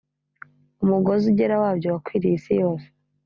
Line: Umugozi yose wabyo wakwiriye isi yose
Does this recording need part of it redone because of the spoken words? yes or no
yes